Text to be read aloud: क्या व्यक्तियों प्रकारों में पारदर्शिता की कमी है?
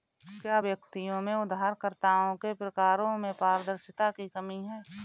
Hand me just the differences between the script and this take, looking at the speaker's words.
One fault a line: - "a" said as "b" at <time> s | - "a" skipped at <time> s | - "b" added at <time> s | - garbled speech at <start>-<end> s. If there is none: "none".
- "में उधारकर्ताओं के" added at 1.2 s